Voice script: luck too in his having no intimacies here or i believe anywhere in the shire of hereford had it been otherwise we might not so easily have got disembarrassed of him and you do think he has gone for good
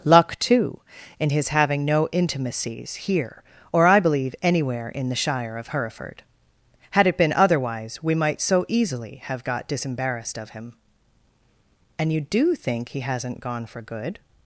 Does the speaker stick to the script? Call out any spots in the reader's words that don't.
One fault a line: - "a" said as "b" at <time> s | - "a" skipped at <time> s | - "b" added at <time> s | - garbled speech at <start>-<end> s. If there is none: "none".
- "not" skipped at 8.4 s
- "has" said as "hasn't" at 13.0 s